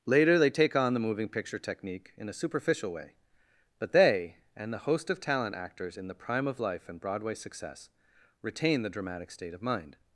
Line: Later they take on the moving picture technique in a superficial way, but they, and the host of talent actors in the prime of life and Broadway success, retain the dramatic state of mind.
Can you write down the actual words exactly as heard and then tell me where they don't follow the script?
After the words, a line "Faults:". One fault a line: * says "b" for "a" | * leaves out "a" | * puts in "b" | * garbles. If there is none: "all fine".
Later they take on the moving picture technique in a superficial way, but they, and the host of talent actors in the prime of life and Broadway success, retain the dramatic state of mind.
Faults:
all fine